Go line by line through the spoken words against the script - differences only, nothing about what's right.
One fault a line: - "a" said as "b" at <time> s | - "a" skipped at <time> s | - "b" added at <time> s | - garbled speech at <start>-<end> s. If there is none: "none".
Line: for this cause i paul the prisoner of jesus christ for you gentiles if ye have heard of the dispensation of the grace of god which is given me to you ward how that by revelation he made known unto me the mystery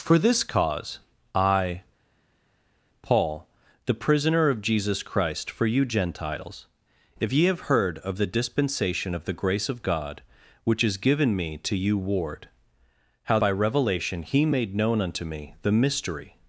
- "that" skipped at 13.4 s